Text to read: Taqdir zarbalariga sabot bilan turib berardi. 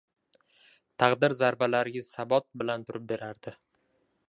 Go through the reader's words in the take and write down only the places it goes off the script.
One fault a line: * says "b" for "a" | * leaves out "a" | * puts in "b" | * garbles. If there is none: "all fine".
all fine